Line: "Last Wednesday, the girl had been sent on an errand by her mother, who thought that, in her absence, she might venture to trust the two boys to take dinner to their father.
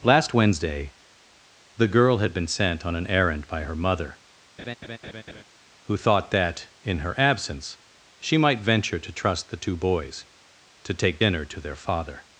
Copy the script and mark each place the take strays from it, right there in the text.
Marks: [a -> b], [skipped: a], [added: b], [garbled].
"Last Wednesday, the girl had been sent on an errand by her mother, who thought that, in her absence, she might venture to trust the two boys to take dinner to their father.